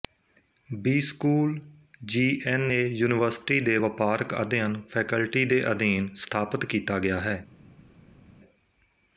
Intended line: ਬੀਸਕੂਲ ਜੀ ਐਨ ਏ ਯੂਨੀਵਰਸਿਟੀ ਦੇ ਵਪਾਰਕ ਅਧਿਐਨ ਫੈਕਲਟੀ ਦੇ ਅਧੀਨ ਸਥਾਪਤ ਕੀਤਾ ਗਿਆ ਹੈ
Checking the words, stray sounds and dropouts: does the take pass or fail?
pass